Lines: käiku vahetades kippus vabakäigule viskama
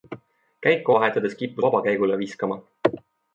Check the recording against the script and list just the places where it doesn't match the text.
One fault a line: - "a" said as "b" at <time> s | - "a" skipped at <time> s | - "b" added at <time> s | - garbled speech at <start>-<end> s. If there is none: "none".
none